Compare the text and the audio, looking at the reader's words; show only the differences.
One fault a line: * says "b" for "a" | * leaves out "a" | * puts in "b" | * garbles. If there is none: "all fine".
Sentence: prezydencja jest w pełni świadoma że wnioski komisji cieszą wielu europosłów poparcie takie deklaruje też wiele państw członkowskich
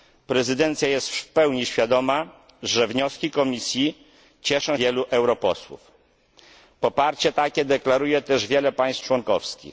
all fine